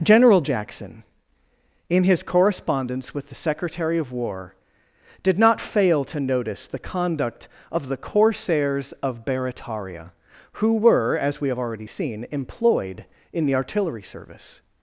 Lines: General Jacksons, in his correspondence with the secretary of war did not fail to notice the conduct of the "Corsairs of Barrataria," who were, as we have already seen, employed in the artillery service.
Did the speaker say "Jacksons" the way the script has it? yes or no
no